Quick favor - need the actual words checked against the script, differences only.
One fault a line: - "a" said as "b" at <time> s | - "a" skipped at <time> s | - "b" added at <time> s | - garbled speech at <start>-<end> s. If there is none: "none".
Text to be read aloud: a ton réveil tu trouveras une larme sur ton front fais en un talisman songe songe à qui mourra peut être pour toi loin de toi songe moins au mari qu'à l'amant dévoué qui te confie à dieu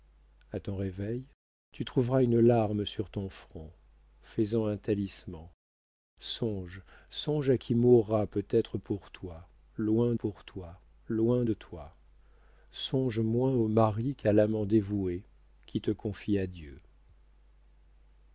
- "pour toi loin" added at 10.1 s